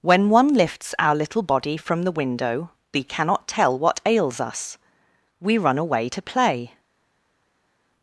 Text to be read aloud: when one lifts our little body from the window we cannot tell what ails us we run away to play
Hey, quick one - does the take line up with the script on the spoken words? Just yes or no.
yes